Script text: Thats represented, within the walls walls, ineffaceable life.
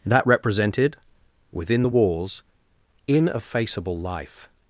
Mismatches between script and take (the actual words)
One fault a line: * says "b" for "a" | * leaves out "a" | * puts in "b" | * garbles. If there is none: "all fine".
* says "That" for "Thats"
* leaves out "walls"